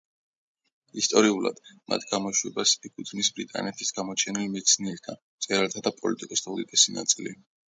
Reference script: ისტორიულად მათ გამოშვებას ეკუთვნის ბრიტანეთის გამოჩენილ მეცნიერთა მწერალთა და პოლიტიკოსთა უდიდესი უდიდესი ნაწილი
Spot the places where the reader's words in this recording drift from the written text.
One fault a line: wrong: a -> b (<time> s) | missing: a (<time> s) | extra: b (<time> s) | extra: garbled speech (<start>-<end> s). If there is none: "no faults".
missing: უდიდესი (7.0 s)